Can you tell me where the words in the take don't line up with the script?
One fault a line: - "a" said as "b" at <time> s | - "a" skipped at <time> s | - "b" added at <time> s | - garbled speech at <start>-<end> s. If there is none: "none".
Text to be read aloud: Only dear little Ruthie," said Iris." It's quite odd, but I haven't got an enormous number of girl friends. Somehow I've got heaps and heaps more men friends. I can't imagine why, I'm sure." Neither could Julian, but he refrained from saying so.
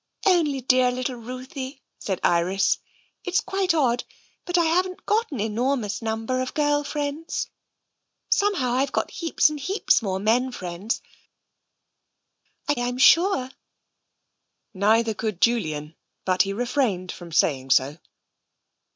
- "can't imagine why" skipped at 12.7 s